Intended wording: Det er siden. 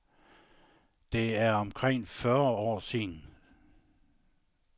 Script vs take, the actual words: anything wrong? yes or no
yes